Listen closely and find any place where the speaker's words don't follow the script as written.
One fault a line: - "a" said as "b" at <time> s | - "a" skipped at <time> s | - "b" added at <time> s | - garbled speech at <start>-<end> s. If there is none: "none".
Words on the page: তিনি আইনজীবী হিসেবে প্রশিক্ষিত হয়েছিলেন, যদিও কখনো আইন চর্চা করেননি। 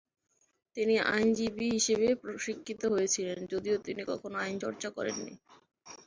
- "তিনি" added at 3.9 s